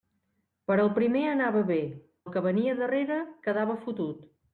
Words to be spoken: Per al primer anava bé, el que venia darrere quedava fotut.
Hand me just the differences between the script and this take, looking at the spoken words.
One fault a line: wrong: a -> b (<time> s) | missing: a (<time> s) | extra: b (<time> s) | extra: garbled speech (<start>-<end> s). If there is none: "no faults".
no faults